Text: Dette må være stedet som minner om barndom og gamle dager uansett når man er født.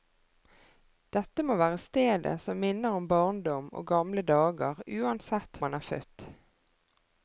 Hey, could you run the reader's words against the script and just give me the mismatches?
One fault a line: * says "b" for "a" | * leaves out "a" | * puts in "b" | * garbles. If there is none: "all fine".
* leaves out "når"